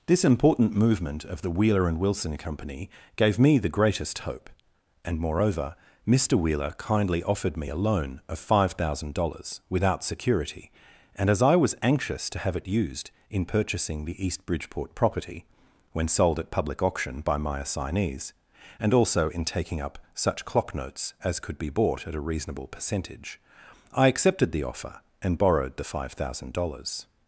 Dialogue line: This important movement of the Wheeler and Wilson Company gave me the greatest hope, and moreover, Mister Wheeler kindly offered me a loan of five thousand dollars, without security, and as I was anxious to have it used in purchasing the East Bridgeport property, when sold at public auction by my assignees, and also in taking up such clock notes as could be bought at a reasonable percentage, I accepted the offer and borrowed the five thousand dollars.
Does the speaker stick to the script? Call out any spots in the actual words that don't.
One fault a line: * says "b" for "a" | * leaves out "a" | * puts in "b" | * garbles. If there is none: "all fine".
all fine